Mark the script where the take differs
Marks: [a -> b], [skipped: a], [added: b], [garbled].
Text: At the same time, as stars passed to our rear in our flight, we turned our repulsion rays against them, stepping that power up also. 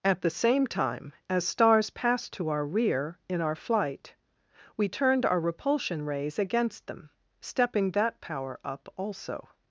At the same time, as stars passed to our rear in our flight, we turned our repulsion rays against them, stepping that power up also.